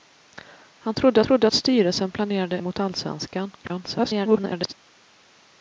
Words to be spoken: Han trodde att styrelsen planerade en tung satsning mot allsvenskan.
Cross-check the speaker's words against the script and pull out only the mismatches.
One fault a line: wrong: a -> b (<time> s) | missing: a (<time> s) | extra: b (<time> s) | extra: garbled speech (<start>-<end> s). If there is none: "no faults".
extra: trodde (1.2 s)
missing: en tung satsning (2.6 s)
extra: garbled speech (3.6-4.7 s)